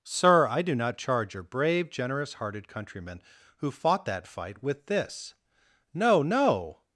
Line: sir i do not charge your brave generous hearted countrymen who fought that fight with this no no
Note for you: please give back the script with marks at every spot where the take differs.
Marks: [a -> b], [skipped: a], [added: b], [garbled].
sir i do not charge your brave generous hearted countrymen who fought that fight with this no no